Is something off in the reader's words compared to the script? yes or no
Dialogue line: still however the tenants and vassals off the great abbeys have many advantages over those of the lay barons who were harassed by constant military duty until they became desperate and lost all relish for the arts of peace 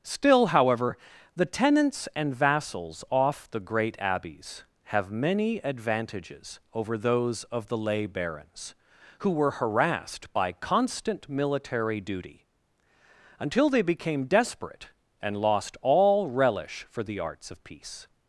no